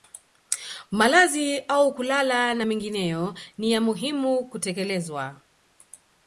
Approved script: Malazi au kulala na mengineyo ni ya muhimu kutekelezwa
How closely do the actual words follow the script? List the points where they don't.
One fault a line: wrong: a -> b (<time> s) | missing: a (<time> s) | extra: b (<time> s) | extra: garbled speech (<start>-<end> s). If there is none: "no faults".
no faults